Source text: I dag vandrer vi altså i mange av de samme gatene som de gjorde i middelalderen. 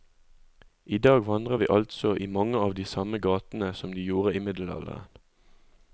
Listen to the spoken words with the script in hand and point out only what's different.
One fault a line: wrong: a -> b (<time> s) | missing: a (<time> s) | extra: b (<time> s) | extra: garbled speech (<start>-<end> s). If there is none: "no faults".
no faults